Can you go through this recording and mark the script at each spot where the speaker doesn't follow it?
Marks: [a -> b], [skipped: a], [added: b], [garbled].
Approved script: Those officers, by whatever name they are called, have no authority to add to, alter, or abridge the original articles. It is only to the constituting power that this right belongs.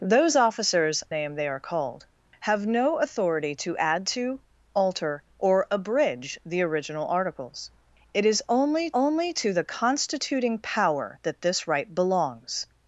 Those officers, [skipped: by whatever] name they are called, have no authority to add to, alter, or abridge the original articles. It is only [added: only] to the constituting power that this right belongs.